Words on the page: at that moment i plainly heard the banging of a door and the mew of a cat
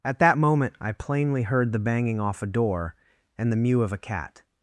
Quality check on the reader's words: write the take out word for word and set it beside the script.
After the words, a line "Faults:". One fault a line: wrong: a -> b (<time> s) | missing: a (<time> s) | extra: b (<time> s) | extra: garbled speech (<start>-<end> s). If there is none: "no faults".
at that moment i plainly heard the banging off a door and the mew of a cat
Faults:
wrong: of -> off (2.2 s)